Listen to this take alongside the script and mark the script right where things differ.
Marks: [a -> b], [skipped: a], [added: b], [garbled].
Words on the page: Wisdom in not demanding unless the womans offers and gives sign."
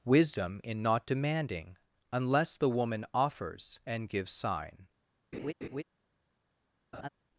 Wisdom in not demanding unless the [womans -> woman] offers and gives sign."